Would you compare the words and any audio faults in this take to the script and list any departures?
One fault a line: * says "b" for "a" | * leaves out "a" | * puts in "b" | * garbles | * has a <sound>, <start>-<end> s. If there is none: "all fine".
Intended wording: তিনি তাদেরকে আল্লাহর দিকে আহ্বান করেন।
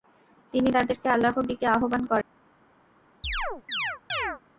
* has a chirp, 3.2-4.4 s